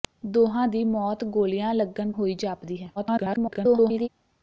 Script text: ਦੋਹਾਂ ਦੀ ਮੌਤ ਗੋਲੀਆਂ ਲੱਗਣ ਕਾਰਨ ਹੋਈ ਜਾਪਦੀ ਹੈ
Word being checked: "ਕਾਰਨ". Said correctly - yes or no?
no